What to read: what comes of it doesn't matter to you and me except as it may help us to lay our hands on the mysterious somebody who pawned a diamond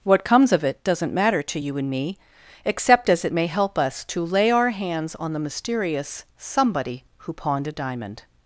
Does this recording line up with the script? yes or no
yes